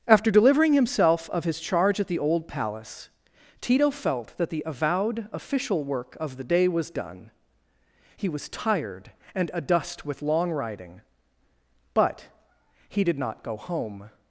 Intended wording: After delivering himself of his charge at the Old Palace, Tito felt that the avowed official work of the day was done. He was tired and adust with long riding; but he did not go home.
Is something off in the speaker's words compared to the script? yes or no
no